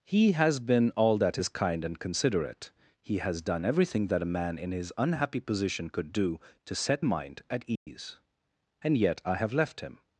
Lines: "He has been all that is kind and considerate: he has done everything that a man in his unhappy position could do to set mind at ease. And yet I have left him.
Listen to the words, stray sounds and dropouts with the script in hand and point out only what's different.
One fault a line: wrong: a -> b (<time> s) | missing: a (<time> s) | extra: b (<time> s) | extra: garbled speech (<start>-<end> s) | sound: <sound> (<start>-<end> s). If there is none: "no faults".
sound: dropout (7.8-7.9 s)